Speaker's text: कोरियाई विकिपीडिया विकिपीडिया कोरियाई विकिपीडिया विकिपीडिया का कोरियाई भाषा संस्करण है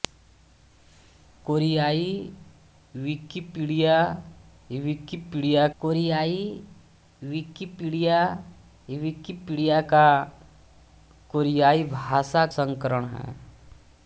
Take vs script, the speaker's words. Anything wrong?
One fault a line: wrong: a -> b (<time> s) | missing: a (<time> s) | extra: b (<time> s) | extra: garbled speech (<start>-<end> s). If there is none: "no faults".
no faults